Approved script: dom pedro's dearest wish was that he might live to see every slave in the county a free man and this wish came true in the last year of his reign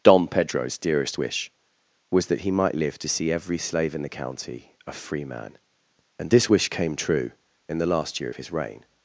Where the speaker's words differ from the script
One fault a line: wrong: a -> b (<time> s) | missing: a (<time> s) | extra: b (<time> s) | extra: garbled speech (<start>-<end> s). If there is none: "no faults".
no faults